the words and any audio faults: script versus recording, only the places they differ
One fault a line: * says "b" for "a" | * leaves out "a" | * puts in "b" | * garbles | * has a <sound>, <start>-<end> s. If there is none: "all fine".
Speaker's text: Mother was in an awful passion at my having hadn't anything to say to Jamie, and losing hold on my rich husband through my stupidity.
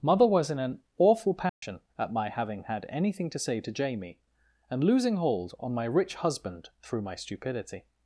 * has a dropout, 1.5-1.6 s
* says "had" for "hadn't"